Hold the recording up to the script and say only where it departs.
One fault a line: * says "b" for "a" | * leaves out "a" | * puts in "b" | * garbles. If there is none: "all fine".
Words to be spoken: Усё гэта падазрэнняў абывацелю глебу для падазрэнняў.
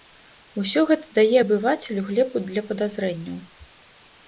* says "дае" for "падазрэнняў"